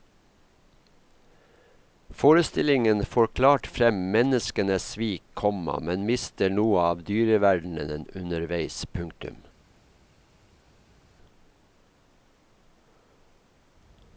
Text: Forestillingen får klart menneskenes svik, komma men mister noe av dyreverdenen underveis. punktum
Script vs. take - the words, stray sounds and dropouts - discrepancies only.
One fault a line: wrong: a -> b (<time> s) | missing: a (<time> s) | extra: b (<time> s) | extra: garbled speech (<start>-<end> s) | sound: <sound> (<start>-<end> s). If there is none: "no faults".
extra: frem (3.7 s)